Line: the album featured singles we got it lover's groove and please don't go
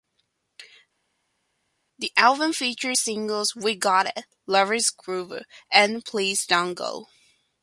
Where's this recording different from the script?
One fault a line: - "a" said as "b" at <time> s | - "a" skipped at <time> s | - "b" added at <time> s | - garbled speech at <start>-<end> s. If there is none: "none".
none